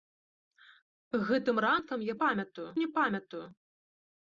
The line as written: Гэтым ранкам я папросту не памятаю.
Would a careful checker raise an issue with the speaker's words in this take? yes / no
yes